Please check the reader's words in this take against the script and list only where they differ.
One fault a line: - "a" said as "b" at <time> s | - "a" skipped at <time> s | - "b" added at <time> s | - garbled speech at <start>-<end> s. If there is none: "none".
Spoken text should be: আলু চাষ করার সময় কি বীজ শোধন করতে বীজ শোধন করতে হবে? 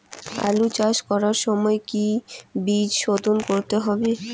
- "বীজ শোধন করতে" skipped at 3.8 s